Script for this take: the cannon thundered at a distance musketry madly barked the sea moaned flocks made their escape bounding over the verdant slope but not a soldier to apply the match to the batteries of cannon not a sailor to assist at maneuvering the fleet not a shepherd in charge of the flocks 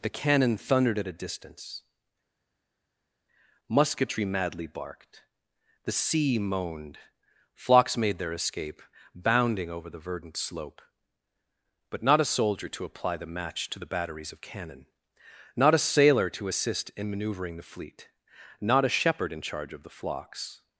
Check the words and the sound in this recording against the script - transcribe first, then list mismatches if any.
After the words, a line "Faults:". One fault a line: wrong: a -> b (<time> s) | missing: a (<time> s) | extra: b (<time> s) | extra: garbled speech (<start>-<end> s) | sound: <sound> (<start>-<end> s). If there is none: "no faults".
the cannon thundered at a distance musketry madly barked the sea moaned flocks made their escape bounding over the verdant slope but not a soldier to apply the match to the batteries of cannon not a sailor to assist in maneuvering the fleet not a shepherd in charge of the flocks
Faults:
wrong: at -> in (17.0 s)